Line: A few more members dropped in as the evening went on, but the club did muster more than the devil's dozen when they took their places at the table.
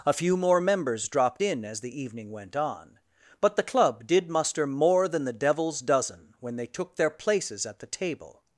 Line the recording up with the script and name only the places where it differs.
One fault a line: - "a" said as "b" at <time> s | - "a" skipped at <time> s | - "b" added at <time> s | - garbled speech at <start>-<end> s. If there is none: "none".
none